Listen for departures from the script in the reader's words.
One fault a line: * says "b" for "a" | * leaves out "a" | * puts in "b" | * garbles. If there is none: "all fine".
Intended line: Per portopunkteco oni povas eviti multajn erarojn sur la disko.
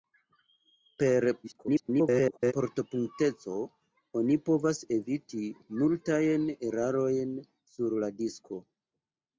* garbles